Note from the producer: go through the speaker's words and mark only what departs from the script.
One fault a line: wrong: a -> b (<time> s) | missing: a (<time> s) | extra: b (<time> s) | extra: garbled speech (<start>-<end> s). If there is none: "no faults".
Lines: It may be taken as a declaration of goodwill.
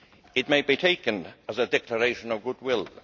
no faults